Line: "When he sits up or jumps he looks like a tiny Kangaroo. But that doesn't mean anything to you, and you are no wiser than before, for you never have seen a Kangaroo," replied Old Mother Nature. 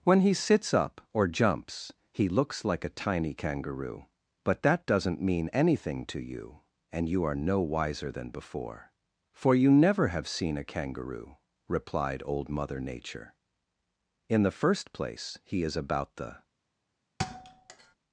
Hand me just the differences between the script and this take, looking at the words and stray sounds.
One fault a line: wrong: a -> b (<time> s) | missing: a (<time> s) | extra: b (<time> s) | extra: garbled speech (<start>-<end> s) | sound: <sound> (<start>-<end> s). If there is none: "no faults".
extra: In the first place he is about the (14.3 s)
sound: thud (17.2-18.0 s)